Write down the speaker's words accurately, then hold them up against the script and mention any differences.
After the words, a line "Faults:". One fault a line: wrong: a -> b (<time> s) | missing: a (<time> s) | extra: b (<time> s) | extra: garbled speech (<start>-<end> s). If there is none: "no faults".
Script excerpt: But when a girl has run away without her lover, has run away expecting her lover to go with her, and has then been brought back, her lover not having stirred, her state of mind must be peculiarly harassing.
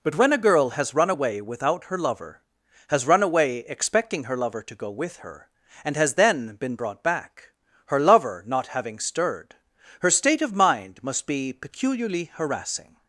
But when a girl has run away without her lover, has run away expecting her lover to go with her, and has then been brought back, her lover not having stirred, her state of mind must be peculiarly harassing.
Faults:
no faults